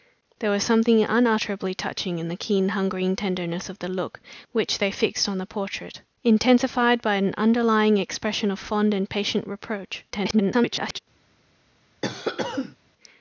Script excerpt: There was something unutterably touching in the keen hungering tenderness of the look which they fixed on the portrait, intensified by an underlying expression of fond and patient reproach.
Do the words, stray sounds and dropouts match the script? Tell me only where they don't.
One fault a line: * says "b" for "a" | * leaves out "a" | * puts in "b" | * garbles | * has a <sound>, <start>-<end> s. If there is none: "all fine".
* garbles
* has a cough, 12.0-12.8 s